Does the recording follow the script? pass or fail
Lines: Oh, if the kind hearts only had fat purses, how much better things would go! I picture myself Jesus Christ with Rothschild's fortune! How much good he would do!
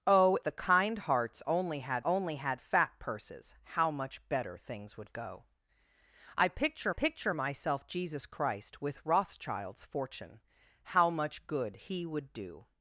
fail